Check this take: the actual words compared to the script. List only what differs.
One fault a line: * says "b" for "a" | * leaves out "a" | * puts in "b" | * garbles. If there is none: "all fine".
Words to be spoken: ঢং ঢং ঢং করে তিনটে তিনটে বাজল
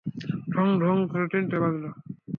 * leaves out "ঢং"
* leaves out "তিনটে"